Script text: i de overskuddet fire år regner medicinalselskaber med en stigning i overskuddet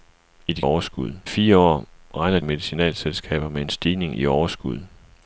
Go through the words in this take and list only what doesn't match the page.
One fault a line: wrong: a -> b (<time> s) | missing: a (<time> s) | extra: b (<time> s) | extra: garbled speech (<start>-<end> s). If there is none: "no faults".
no faults